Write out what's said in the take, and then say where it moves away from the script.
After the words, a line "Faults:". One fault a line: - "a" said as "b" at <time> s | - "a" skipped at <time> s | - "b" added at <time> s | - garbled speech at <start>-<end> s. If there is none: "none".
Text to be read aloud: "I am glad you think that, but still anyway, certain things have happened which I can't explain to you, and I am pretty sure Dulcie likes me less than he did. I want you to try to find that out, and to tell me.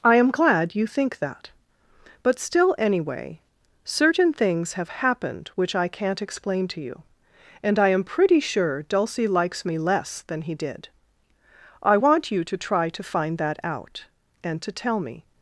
"I am glad you think that, but still anyway, certain things have happened which I can't explain to you, and I am pretty sure Dulcie likes me less than he did. I want you to try to find that out, and to tell me.
Faults:
none